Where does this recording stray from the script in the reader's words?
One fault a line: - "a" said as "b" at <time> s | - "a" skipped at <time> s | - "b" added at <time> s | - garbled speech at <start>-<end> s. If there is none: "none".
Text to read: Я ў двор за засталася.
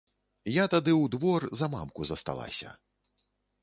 - "тады" added at 0.8 s
- "мамку" added at 1.8 s